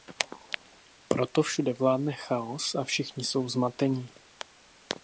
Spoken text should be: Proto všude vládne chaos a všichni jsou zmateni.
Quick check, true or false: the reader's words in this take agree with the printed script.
true